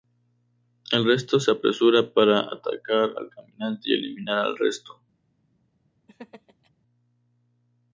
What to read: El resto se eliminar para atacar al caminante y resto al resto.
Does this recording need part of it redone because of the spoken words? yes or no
yes